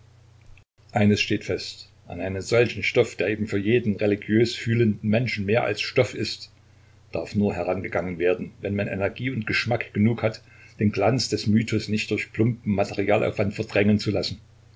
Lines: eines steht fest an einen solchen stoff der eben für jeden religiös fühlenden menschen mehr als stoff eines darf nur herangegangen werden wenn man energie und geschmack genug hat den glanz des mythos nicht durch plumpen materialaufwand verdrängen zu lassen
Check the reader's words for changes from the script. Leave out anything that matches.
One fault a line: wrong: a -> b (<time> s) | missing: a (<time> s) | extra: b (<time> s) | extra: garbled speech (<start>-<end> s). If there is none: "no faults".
wrong: eines -> ist (6.1 s)